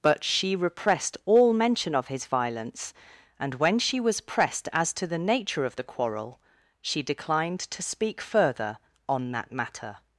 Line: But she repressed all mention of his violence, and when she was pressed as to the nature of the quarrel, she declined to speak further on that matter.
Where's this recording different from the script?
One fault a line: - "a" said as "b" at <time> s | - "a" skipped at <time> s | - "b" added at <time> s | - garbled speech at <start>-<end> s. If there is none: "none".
none